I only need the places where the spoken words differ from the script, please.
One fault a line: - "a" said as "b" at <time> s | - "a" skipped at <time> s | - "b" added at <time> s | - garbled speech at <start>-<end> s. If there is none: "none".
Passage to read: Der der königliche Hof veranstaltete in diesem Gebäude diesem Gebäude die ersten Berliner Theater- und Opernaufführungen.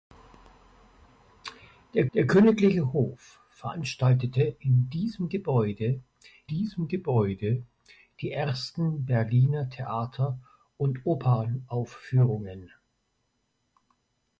none